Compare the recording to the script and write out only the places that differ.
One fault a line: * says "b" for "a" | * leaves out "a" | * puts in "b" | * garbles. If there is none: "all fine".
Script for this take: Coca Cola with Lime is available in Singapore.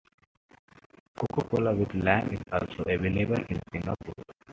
* puts in "also"